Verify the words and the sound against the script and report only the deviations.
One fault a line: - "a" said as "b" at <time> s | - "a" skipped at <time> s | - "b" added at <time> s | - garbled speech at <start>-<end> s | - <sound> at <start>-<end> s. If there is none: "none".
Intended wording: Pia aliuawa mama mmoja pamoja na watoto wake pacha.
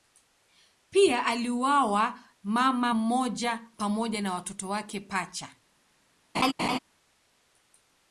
- laugh at 6.3-6.8 s